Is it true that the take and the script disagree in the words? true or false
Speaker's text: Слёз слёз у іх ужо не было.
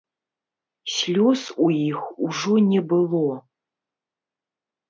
true